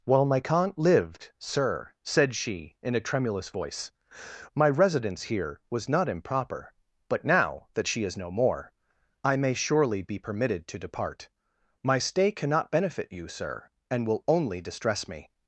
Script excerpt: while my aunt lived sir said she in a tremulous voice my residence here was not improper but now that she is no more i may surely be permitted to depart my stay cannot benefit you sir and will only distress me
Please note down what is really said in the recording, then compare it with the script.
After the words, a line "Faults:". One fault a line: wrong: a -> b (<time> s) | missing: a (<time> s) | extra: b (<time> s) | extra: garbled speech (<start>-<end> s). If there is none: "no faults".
while my aunt lived sir said she in a tremulous voice my residence here was not improper but now that she is no more i may surely be permitted to depart my stay cannot benefit you sir and will only distress me
Faults:
no faults